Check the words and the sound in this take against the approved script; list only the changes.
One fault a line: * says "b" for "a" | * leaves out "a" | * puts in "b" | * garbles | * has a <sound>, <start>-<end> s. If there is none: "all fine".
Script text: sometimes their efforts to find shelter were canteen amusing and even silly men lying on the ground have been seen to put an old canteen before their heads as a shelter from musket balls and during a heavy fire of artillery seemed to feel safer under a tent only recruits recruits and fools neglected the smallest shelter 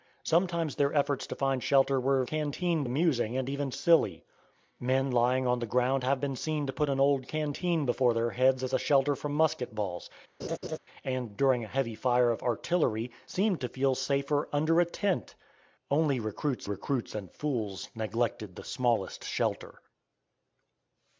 * has a laugh, 10.4-10.8 s